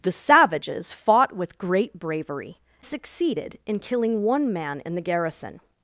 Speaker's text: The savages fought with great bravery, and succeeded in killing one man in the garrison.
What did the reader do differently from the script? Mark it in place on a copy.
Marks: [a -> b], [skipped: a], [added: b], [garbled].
The savages fought with great bravery, [skipped: and] succeeded in killing one man in the garrison.